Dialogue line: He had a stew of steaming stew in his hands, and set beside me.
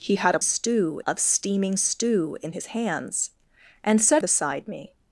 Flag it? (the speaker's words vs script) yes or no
no